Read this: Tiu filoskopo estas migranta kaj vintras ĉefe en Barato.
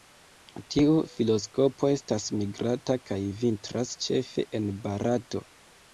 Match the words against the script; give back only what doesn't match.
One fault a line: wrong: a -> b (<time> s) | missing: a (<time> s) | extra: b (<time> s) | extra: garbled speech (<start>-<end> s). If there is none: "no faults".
no faults